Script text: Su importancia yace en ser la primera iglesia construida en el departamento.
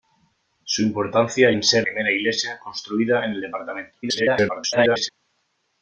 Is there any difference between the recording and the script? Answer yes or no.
yes